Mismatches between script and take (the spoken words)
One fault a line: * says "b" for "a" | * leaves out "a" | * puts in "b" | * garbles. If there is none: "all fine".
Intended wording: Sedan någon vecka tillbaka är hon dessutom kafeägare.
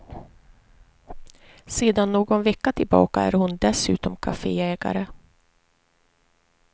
all fine